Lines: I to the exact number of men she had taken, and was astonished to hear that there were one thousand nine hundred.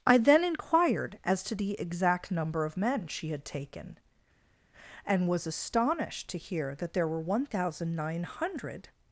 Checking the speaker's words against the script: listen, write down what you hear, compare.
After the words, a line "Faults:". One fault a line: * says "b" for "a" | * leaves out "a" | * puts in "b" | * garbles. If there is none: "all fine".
I then inquired as to the exact number of men she had taken, and was astonished to hear that there were one thousand nine hundred.
Faults:
* puts in "then inquired as"